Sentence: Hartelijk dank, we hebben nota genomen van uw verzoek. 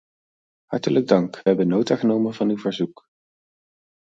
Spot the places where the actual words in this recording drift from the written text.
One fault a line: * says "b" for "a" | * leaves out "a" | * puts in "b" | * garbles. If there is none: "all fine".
all fine